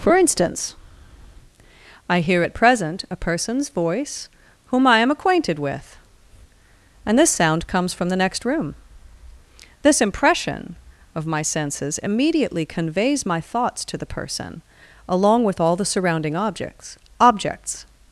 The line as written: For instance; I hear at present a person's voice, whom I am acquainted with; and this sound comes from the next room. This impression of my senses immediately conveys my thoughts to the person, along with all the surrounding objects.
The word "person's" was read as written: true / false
true